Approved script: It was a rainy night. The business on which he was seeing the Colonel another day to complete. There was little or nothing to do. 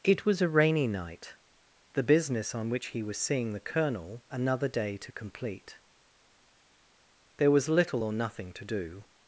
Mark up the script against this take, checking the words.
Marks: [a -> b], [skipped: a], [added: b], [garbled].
It was a rainy night. The business on which he was seeing the Colonel another day to complete. There was little or nothing to do.